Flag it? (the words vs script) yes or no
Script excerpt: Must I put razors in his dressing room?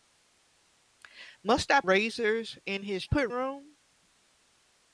yes